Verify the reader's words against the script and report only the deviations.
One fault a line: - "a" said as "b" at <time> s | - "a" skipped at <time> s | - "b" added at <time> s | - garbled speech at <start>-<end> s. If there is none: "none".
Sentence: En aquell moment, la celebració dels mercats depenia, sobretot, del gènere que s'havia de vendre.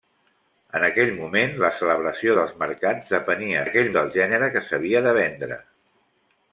- "sobretot" said as "aquell" at 3.6 s